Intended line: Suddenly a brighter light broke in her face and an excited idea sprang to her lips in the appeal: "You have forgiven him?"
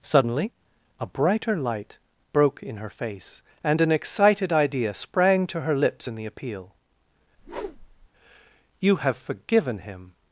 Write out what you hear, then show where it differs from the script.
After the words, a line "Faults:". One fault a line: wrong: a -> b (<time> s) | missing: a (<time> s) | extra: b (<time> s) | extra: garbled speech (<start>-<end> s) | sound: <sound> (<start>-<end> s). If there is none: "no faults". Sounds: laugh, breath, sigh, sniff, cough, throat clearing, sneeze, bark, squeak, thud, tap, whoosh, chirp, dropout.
Suddenly a brighter light broke in her face and an excited idea sprang to her lips in the appeal: "You have forgiven him?"
Faults:
sound: whoosh (7.4-8.1 s)